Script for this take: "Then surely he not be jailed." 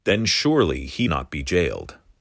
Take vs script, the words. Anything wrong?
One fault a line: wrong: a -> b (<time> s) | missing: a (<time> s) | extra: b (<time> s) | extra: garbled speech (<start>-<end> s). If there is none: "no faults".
no faults